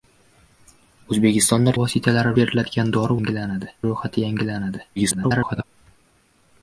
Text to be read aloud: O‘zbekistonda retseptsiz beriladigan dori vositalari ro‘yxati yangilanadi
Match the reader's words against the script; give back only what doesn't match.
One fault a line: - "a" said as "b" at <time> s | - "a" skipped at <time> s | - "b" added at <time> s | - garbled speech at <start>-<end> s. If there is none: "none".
- "retseptsiz" said as "vositalari" at 1.8 s
- "vositalari" said as "yangilanadi" at 3.2 s
- garbled speech at 5.0-5.6 s